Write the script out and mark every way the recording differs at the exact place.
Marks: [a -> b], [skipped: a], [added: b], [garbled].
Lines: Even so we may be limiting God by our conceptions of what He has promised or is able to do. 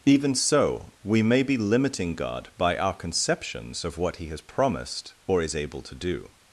Even so we may be limiting God by our conceptions of what He has promised or is able to do.